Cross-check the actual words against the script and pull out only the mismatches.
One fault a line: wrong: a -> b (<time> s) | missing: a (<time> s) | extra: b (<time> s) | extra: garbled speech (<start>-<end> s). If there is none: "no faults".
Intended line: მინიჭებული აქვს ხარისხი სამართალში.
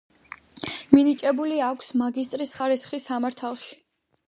extra: მაგისტრის (2.0 s)